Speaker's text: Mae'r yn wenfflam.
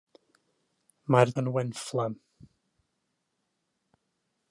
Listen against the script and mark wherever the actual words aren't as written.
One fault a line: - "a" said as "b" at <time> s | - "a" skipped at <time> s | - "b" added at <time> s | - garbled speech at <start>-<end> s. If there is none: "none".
none